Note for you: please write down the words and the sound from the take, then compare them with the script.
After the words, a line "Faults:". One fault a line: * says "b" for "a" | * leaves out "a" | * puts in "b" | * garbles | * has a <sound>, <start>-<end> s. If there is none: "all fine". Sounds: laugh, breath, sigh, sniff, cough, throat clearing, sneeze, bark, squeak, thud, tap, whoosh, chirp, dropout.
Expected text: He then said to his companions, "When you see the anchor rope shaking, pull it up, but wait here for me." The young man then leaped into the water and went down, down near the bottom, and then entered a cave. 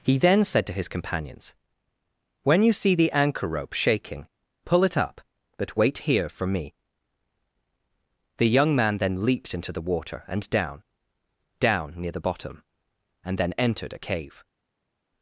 He then said to his companions, "When you see the anchor rope shaking, pull it up, but wait here for me." The young man then leaped into the water and down, down near the bottom, and then entered a cave.
Faults:
* leaves out "went"